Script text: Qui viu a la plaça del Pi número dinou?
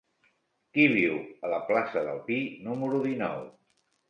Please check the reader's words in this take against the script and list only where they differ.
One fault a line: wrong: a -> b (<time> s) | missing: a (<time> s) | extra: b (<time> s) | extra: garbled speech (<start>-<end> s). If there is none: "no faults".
no faults